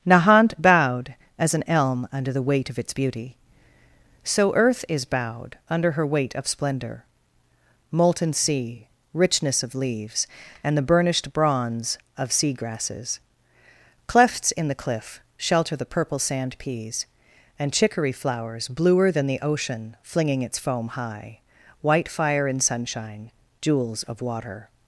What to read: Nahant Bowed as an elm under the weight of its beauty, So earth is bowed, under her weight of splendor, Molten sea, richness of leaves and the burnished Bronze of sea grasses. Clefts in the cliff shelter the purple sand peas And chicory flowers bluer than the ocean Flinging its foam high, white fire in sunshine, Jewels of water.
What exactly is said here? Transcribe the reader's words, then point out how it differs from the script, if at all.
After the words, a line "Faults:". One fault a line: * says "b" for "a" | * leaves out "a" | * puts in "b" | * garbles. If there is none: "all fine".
Nahant Bowed as an elm under the weight of its beauty, So earth is bowed, under her weight of splendor, Molten sea, richness of leaves and the burnished Bronze of sea grasses. Clefts in the cliff shelter the purple sand peas And chicory flowers bluer than the ocean Flinging its foam high, white fire in sunshine, Jewels of water.
Faults:
all fine